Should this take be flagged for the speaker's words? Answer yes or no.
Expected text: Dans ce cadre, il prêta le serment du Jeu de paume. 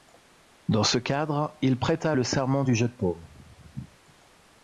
no